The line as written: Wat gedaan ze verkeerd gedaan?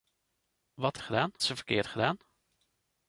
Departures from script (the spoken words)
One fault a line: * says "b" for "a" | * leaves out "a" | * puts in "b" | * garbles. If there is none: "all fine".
all fine